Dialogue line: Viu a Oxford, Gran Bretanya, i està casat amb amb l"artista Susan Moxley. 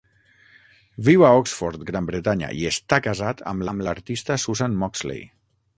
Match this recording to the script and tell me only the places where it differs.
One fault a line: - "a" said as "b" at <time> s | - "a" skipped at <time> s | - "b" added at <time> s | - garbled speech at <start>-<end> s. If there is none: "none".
none